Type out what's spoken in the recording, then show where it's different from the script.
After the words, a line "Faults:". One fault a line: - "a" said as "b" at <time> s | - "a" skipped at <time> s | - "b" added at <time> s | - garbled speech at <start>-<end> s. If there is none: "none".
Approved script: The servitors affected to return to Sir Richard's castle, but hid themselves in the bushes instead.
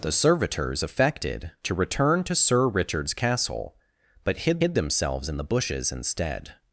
The servitors affected to return to Sir Richard's castle, but hid hid themselves in the bushes instead.
Faults:
- "hid" added at 4.6 s